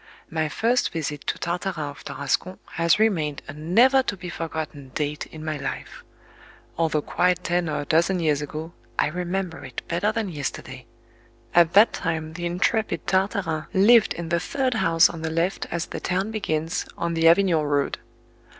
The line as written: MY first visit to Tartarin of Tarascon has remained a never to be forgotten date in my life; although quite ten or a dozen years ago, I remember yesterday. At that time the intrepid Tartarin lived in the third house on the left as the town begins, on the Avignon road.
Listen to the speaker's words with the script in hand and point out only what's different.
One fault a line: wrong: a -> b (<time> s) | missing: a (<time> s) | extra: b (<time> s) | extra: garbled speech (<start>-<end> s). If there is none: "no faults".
extra: it better than (9.6 s)